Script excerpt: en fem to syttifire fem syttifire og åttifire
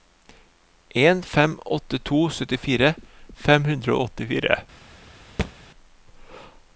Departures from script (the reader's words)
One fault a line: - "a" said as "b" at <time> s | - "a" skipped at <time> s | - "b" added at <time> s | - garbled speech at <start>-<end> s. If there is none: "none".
- "åtte" added at 1.6 s
- "syttifire" said as "hundre" at 3.7 s